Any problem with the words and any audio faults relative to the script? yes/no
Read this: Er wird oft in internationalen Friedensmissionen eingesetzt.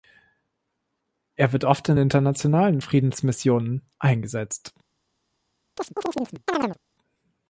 yes